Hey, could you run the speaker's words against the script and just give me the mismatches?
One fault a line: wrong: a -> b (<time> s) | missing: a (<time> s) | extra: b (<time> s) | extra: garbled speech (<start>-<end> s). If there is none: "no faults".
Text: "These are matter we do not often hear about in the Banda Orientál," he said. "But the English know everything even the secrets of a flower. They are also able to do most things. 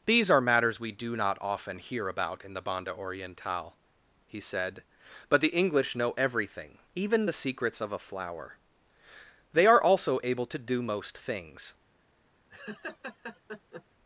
wrong: matter -> matters (0.4 s)